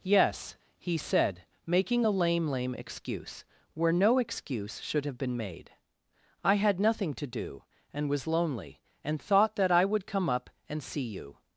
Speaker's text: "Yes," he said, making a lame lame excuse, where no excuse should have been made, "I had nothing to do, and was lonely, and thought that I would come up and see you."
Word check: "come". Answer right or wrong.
right